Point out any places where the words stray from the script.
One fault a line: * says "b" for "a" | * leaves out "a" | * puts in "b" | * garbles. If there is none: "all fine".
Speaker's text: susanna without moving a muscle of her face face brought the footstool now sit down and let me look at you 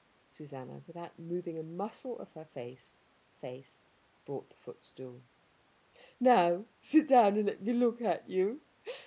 all fine